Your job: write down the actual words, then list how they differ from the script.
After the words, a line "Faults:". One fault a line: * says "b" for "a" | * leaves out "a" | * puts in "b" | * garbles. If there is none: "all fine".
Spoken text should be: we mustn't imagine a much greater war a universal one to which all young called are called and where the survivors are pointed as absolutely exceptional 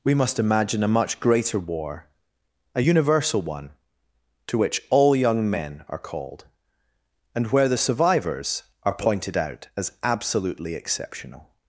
we must imagine a much greater war a universal one to which all young men are called and where the survivors are pointed out as absolutely exceptional
Faults:
* says "must" for "mustn't"
* says "men" for "called"
* puts in "out"